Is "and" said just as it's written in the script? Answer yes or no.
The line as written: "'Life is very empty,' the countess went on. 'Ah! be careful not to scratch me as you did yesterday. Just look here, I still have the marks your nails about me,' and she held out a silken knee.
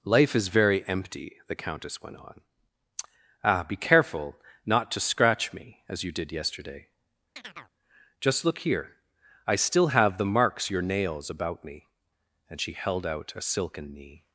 yes